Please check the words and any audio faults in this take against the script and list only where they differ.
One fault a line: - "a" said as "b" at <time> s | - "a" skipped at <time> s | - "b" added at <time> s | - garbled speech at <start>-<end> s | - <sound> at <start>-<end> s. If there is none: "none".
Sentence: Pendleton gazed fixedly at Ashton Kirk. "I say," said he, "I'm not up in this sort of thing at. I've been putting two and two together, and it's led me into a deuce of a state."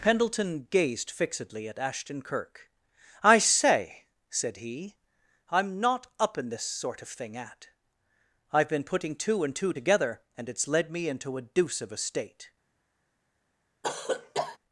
- cough at 13.8-14.6 s